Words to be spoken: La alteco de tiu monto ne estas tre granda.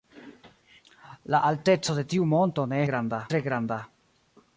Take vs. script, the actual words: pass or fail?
fail